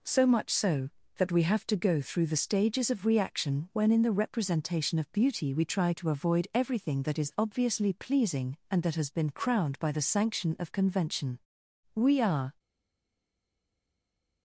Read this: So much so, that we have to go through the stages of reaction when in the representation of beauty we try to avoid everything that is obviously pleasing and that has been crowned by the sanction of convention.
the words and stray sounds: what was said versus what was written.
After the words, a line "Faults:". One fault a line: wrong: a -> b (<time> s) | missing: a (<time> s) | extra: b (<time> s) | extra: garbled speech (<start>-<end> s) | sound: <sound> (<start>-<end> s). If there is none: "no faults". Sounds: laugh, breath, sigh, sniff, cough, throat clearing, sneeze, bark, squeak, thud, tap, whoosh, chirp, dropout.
So much so, that we have to go through the stages of reaction when in the representation of beauty we try to avoid everything that is obviously pleasing and that has been crowned by the sanction of convention. We are
Faults:
extra: We are (11.9 s)